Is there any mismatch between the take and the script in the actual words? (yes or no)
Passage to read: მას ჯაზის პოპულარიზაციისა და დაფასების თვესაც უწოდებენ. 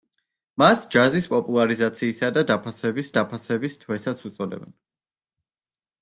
yes